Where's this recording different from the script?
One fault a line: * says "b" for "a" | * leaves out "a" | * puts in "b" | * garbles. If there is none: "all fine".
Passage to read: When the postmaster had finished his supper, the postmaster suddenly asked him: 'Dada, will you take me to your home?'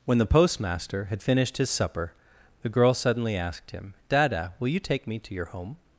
* says "girl" for "postmaster"